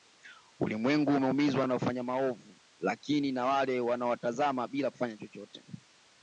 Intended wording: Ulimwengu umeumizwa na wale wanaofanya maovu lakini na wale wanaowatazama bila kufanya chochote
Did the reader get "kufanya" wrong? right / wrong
right